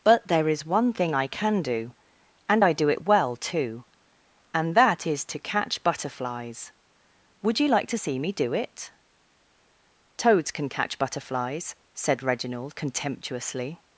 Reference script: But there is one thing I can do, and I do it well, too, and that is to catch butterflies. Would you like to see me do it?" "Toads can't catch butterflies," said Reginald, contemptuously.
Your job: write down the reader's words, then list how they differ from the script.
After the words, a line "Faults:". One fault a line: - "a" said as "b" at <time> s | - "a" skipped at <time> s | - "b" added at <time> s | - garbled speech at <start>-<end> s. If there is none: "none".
But there is one thing I can do, and I do it well, too, and that is to catch butterflies. Would you like to see me do it?" "Toads can catch butterflies," said Reginald, contemptuously.
Faults:
- "can't" said as "can" at 10.5 s